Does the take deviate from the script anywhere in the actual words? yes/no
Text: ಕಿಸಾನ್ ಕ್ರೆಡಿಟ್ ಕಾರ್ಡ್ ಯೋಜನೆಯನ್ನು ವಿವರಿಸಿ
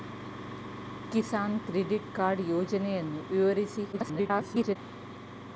yes